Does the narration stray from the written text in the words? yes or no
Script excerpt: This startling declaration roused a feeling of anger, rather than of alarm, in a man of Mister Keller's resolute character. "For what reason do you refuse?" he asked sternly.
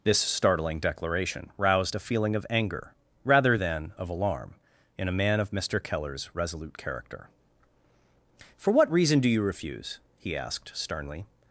no